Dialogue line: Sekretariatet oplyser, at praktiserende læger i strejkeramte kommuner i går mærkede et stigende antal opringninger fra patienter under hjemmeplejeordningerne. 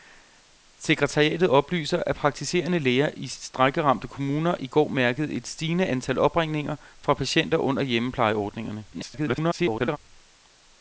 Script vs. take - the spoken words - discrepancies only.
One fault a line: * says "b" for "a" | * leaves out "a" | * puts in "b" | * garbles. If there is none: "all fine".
* garbles